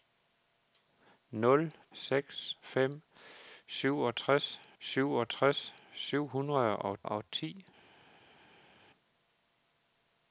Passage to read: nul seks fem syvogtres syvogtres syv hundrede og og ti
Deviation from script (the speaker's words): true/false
false